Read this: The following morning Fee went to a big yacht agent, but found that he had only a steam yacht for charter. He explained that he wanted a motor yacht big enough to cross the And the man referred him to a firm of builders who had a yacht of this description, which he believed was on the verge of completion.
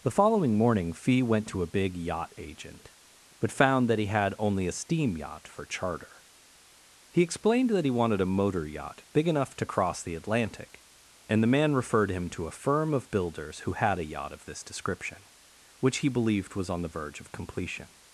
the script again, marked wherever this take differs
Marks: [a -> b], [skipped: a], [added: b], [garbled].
The following morning Fee went to a big yacht agent, but found that he had only a steam yacht for charter. He explained that he wanted a motor yacht big enough to cross the [added: Atlantic] And the man referred him to a firm of builders who had a yacht of this description, which he believed was on the verge of completion.